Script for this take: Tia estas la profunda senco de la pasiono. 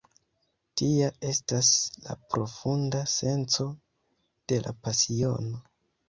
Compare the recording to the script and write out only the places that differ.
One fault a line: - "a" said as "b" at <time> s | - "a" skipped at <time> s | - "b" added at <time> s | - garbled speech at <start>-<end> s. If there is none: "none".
none